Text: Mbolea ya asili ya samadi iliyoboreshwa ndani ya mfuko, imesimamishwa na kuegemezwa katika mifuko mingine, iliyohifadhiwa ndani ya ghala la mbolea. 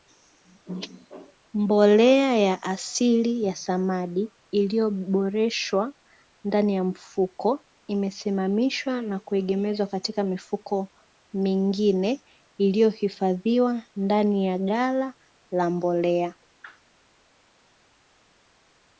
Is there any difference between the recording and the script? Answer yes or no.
no